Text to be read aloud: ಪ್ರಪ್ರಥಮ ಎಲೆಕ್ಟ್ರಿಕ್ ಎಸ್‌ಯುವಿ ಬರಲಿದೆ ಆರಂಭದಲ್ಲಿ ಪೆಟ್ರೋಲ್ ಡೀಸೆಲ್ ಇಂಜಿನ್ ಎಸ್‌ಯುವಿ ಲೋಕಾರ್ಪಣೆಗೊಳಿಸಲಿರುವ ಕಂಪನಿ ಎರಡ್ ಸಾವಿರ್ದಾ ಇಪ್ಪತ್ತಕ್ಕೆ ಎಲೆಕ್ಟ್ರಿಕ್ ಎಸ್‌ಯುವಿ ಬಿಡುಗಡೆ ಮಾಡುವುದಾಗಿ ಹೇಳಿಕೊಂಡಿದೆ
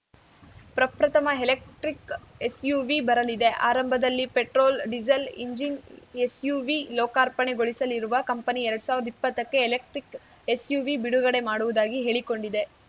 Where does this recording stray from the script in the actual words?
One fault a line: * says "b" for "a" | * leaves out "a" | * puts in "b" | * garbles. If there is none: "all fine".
all fine